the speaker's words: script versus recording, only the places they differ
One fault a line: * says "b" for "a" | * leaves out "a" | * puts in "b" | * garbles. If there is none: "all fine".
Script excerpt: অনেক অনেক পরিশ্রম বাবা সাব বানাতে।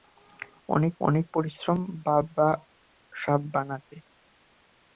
all fine